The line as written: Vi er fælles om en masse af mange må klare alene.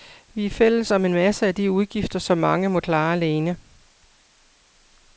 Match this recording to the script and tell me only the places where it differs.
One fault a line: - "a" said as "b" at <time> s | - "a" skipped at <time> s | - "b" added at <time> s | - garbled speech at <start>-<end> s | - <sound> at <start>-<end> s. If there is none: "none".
- "de udgifter som" added at 1.5 s